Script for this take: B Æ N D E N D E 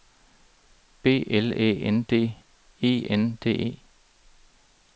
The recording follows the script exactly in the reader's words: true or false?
false